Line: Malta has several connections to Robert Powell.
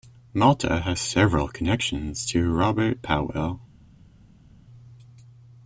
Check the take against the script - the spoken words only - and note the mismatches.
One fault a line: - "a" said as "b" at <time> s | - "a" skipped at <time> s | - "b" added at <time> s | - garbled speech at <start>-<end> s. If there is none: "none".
none